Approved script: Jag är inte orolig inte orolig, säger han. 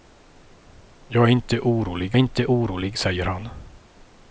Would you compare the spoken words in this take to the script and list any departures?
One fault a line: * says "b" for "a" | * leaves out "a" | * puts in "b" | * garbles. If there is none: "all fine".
all fine